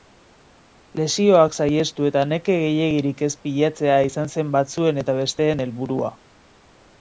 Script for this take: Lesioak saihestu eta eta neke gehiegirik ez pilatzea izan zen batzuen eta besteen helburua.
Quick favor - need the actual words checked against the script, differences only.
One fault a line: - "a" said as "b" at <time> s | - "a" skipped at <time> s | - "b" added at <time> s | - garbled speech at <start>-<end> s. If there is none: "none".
- "eta" skipped at 2.2 s